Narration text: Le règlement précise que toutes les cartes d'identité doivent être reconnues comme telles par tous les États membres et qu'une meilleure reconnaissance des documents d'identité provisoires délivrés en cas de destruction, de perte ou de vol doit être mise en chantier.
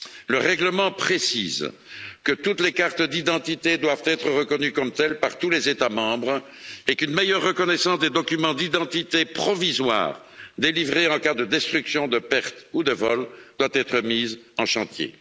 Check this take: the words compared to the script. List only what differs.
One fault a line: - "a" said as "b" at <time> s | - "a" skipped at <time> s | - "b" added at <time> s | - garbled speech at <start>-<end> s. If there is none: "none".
none